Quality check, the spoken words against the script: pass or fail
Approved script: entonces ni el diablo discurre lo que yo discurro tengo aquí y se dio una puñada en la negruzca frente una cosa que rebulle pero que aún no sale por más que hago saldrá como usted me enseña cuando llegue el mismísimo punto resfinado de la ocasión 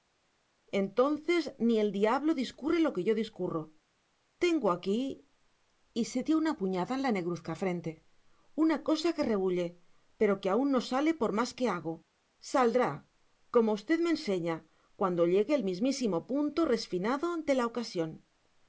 pass